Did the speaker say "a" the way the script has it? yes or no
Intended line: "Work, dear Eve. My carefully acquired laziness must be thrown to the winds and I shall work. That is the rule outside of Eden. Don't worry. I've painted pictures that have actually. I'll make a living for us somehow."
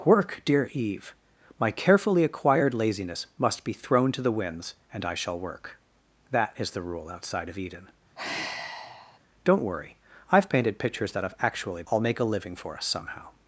yes